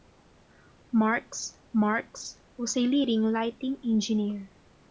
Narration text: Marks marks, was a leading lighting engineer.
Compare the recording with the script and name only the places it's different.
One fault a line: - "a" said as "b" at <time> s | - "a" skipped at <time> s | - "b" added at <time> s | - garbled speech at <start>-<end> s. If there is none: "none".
none